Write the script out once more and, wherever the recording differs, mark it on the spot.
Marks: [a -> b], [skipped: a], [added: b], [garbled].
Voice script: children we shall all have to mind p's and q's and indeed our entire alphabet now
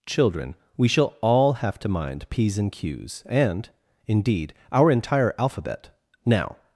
children we shall all have to mind p's and q's and indeed our entire alphabet now